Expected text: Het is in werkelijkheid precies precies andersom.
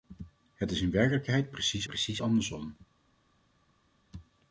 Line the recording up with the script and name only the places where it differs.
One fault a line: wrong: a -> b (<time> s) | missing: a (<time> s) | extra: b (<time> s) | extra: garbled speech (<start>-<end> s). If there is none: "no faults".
no faults